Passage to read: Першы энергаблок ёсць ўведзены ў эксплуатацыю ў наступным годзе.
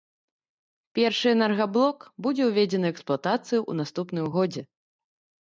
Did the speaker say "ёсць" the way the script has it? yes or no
no